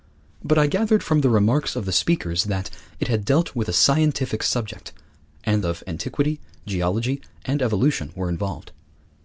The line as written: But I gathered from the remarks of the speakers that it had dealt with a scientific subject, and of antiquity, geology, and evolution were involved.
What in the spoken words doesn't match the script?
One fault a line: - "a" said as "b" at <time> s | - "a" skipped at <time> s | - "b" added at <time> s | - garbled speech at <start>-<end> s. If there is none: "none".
none